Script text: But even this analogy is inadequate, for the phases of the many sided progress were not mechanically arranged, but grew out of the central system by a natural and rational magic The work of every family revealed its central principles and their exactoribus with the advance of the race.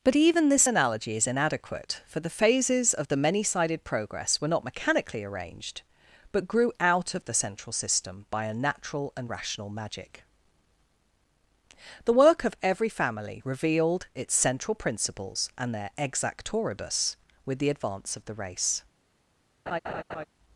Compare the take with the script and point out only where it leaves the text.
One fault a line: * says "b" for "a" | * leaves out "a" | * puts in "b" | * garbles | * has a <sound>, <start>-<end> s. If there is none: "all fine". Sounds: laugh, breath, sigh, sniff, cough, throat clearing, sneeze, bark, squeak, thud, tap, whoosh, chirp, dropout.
* has a laugh, 19.7-20.2 s